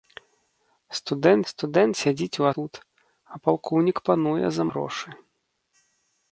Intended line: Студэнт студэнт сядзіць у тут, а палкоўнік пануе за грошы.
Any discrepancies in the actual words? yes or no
no